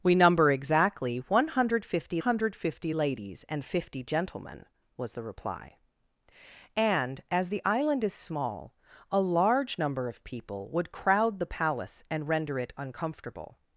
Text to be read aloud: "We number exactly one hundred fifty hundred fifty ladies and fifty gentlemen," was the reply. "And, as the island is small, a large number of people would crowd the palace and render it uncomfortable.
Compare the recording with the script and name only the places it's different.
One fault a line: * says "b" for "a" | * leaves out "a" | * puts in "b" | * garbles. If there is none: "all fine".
all fine